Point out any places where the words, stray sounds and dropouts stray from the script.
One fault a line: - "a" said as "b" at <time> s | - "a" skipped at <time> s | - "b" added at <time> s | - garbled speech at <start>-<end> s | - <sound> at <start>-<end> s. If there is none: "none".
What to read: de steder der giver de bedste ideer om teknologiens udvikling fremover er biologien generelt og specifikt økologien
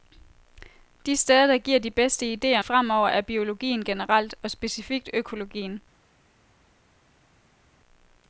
- "om teknologiens udvikling" skipped at 2.6 s